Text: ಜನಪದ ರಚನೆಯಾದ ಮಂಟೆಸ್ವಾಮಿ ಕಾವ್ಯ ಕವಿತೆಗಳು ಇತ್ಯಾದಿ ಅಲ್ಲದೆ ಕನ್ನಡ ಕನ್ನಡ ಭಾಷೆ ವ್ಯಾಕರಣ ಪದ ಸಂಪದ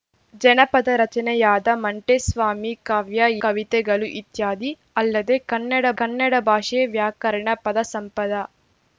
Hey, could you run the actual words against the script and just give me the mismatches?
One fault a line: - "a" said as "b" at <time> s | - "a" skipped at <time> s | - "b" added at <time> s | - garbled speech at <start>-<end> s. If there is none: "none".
none